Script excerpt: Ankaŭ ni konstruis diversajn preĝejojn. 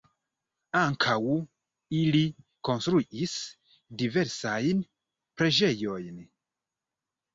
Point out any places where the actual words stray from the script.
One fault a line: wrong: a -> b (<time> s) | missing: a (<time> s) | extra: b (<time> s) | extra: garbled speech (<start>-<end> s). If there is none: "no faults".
wrong: ni -> ili (2.0 s)